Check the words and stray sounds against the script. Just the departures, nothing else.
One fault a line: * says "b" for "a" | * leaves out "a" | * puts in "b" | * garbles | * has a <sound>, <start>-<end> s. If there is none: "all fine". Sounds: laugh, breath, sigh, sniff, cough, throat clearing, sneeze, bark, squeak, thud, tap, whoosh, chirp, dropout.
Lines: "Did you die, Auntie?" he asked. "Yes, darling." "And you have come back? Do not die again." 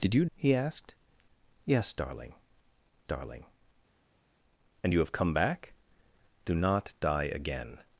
* leaves out "die Auntie"
* puts in "darling"